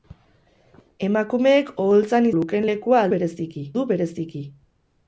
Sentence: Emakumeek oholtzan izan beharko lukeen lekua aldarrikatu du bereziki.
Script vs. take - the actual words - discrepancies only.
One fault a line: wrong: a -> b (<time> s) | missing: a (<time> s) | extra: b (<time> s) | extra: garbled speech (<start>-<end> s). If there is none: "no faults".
missing: izan beharko (2.3 s)
wrong: aldarrikatu -> bereziki (3.1 s)